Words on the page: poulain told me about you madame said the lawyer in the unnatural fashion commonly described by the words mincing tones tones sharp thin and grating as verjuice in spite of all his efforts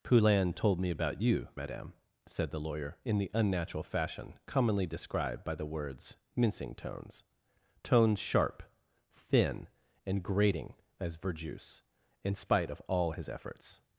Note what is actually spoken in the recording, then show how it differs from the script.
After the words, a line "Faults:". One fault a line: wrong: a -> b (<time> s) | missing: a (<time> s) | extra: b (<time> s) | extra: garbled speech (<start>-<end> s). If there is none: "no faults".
poulain told me about you madame said the lawyer in the unnatural fashion commonly described by the words mincing tones tones sharp thin and grating as verjuice in spite of all his efforts
Faults:
no faults